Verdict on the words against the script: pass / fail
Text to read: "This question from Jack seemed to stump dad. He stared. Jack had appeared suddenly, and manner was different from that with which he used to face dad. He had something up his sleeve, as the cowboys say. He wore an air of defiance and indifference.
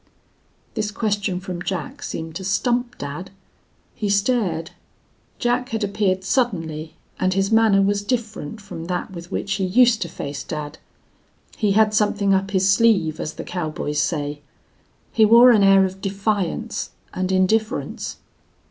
fail